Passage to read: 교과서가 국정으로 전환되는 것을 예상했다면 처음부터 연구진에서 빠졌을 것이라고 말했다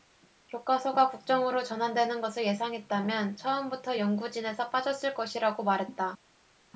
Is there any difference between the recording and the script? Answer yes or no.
no